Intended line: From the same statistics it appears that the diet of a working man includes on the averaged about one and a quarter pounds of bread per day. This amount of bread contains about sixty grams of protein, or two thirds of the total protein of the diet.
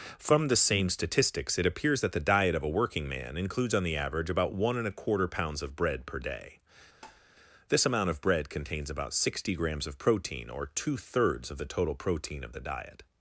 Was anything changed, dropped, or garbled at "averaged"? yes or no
yes